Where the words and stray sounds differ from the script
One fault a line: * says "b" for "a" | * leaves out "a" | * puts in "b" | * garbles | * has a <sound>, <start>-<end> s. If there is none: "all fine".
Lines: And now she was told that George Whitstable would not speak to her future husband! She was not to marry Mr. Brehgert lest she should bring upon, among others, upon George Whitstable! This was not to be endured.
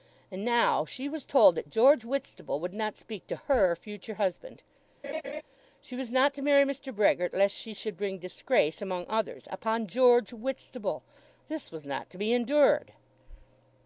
* has a laugh, 5.0-5.4 s
* says "disgrace" for "upon"